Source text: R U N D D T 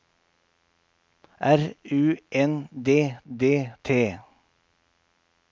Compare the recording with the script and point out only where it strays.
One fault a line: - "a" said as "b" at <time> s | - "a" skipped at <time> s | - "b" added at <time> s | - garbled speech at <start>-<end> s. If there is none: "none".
none